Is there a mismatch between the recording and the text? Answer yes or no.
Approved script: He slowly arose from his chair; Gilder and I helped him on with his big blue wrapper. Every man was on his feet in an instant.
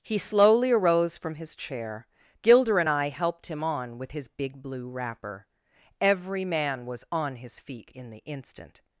yes